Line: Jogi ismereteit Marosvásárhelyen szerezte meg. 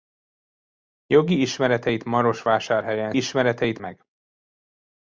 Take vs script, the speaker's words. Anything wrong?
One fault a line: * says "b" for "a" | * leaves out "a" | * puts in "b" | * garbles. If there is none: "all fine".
* says "ismereteit" for "szerezte"